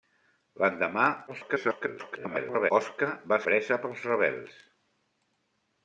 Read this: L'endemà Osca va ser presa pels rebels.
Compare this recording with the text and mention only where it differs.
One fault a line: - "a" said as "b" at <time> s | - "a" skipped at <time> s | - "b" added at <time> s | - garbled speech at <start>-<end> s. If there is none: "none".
- garbled speech at 1.3-2.7 s
- "ser" skipped at 3.4 s